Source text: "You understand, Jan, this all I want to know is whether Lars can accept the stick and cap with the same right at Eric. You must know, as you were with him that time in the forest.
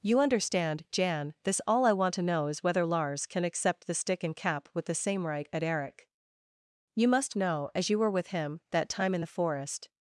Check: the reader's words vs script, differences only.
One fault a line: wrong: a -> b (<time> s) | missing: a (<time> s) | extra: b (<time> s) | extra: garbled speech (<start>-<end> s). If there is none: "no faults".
no faults